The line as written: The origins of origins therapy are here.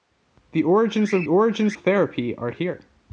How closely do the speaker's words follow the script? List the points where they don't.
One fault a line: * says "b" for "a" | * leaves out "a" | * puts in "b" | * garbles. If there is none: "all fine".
all fine